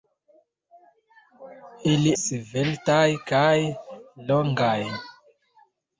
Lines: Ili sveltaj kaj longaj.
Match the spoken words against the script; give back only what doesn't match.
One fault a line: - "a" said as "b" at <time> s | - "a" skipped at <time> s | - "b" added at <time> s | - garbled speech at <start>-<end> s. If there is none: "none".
none